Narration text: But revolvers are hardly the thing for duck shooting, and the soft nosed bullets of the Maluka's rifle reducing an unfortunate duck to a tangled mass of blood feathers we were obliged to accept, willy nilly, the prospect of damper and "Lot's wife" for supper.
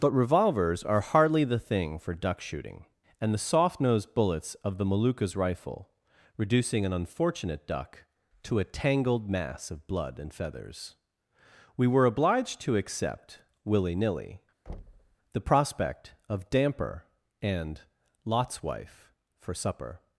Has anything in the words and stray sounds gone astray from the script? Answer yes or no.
yes